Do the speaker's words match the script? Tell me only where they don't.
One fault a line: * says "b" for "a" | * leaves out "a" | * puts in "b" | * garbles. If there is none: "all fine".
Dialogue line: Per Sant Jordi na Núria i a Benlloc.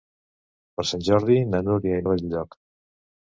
all fine